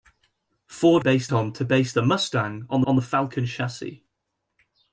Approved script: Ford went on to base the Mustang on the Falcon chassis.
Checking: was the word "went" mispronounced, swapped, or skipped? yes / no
yes